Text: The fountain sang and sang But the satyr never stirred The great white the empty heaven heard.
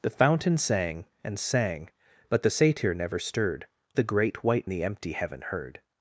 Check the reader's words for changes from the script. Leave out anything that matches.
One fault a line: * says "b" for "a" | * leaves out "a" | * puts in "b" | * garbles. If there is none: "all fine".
all fine